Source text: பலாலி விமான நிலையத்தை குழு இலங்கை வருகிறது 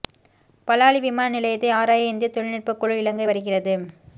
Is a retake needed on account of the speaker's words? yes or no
yes